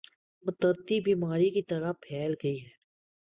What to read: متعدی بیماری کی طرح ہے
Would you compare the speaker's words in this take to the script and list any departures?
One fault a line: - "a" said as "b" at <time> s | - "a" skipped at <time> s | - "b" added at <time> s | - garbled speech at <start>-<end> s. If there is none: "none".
- "پھیل گئی" added at 2.0 s